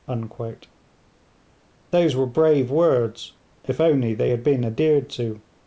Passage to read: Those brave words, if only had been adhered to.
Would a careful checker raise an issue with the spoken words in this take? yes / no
yes